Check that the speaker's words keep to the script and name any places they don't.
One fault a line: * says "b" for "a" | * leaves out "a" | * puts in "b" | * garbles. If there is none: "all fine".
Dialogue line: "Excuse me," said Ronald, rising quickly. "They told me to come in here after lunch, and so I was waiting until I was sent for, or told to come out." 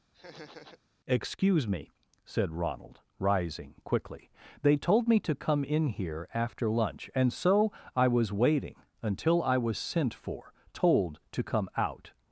* leaves out "or"